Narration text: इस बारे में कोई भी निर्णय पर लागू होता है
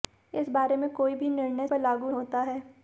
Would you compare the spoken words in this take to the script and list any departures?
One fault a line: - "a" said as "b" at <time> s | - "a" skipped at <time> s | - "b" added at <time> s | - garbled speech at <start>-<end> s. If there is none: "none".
none